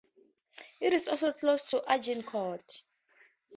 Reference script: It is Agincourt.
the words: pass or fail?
fail